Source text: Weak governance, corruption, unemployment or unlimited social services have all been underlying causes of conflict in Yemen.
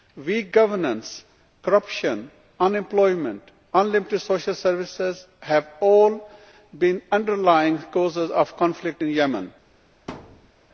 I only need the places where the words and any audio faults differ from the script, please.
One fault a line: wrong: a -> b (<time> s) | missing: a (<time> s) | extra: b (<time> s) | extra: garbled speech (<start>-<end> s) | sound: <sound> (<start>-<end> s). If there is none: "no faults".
wrong: or -> and (3.7 s)
sound: thud (10.1-10.5 s)